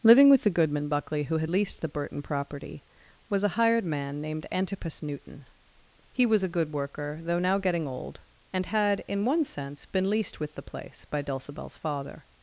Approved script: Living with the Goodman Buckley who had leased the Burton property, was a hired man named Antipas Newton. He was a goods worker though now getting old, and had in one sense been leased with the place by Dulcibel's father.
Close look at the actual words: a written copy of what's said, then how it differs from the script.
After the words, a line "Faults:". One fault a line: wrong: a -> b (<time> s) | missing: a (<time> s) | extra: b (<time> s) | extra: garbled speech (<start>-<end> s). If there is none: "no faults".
Living with the Goodman Buckley who had leased the Burton property, was a hired man named Antipas Newton. He was a good worker though now getting old, and had in one sense been leased with the place by Dulcibel's father.
Faults:
wrong: goods -> good (6.5 s)